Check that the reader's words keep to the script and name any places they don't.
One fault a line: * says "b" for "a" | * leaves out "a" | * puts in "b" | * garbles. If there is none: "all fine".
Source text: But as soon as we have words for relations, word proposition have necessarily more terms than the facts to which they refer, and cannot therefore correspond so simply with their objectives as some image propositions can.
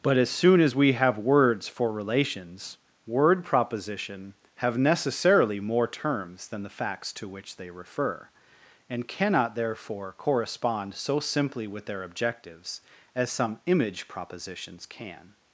all fine